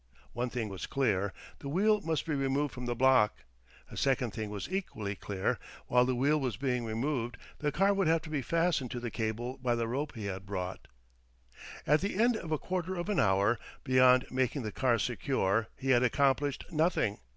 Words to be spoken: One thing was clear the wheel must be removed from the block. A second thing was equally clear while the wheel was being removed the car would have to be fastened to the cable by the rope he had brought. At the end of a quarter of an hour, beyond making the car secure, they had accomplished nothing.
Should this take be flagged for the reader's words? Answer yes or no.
yes